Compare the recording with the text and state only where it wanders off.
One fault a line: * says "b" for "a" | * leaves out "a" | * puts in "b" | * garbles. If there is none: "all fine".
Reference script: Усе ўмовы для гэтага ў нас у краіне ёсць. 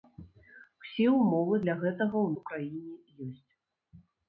* leaves out "нас"